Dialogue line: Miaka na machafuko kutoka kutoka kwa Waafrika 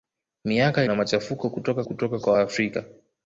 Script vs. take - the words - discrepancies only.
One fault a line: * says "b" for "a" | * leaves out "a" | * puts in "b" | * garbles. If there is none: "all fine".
all fine